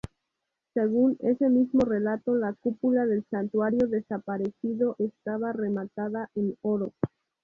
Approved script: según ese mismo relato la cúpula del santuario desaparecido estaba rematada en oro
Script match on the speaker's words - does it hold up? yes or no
yes